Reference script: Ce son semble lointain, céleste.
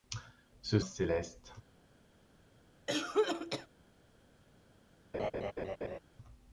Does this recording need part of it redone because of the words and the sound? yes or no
yes